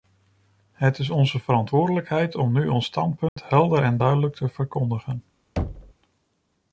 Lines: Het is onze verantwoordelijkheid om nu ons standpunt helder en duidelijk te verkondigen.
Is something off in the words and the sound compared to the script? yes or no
yes